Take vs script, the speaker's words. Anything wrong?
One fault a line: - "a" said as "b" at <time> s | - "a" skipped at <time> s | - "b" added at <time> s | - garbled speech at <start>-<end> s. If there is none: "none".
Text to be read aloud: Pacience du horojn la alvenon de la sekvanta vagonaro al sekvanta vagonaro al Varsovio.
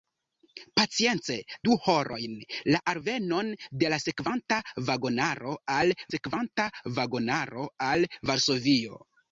none